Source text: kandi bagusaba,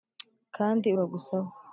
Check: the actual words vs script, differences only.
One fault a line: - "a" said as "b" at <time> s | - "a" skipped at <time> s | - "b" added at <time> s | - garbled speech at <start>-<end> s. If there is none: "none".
none